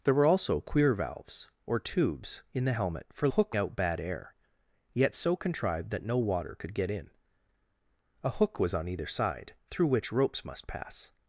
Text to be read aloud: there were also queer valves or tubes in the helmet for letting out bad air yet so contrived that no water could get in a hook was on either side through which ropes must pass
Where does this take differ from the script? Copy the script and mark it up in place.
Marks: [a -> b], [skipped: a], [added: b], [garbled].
there were also queer valves or tubes in the helmet for [letting -> hook] out bad air yet so contrived that no water could get in a hook was on either side through which ropes must pass